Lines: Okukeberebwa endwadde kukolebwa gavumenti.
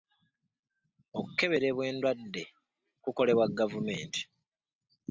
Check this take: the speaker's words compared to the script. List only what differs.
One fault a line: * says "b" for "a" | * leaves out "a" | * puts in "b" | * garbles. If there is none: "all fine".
all fine